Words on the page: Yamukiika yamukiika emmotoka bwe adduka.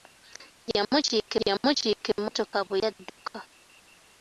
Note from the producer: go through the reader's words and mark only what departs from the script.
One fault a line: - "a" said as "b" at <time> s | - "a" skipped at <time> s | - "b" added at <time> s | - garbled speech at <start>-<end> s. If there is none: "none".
none